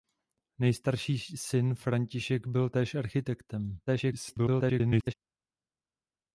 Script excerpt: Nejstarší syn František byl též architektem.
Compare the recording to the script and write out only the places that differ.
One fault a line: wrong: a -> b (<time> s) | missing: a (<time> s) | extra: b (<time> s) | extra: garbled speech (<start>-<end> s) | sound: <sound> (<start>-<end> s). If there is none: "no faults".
extra: garbled speech (3.9-5.1 s)